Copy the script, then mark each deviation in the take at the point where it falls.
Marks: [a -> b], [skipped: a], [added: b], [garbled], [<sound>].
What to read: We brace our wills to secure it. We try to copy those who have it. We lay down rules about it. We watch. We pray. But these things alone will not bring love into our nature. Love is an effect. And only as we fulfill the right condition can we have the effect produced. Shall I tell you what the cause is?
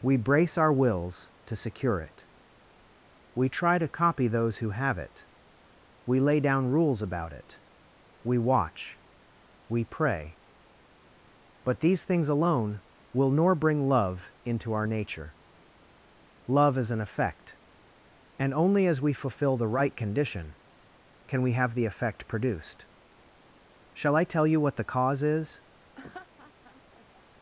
We brace our wills to secure it. We try to copy those who have it. We lay down rules about it. We watch. We pray. But these things alone will [not -> nor] bring love into our nature. Love is an effect. And only as we fulfill the right condition can we have the effect produced. Shall I tell you what the cause is? [laugh]